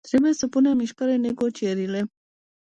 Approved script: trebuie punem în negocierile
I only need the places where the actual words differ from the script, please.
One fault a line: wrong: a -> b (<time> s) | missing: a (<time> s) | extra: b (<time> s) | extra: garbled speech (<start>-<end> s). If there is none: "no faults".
extra: să (0.3 s)
extra: mișcare (0.8 s)